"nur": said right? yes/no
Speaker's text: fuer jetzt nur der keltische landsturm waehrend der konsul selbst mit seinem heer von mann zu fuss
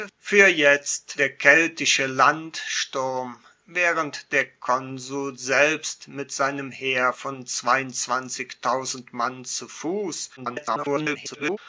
no